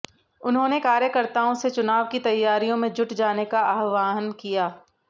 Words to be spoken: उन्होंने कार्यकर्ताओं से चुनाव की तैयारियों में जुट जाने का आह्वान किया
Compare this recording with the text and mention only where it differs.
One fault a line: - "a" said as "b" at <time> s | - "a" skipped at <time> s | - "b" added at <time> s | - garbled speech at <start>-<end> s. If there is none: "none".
none